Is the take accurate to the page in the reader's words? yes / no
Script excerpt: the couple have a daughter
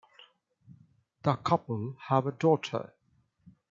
yes